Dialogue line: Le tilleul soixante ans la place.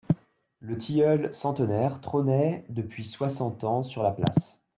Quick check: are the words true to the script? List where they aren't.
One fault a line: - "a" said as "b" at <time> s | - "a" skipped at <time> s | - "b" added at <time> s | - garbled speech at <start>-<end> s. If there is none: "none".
- "centenaire trônait depuis" added at 1.3 s
- "sur" added at 3.8 s